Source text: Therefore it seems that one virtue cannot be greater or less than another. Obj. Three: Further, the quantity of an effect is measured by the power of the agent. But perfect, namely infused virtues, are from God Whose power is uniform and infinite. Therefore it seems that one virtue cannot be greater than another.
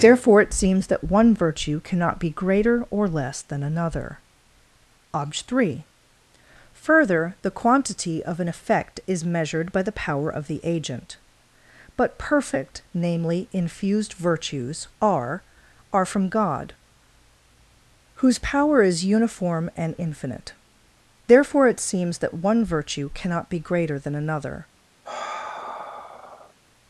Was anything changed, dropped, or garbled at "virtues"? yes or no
no